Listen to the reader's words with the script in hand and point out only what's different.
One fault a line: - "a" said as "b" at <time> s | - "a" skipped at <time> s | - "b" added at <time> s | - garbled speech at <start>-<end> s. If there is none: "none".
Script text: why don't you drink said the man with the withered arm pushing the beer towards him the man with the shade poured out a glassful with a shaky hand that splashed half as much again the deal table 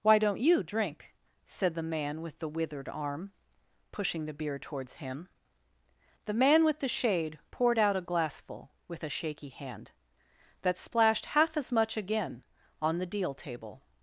- "on" added at 12.8 s